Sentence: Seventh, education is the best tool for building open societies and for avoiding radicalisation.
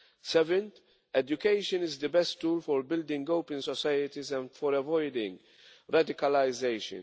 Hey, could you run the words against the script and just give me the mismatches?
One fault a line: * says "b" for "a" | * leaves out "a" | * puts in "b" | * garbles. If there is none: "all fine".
all fine